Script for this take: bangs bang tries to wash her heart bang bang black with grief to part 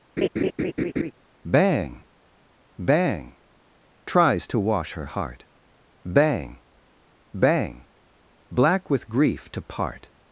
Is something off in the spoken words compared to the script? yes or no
yes